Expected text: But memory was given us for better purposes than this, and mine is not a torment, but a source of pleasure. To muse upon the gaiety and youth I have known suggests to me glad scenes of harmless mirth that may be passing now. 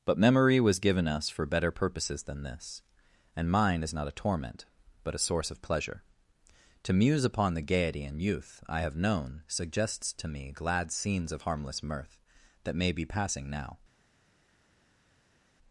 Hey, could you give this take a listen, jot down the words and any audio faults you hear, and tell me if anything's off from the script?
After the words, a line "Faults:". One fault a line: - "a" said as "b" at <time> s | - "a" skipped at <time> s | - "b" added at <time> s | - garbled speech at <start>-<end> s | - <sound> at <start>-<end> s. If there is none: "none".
But memory was given us for better purposes than this, and mine is not a torment, but a source of pleasure. To muse upon the gaiety and youth I have known suggests to me glad scenes of harmless mirth that may be passing now.
Faults:
none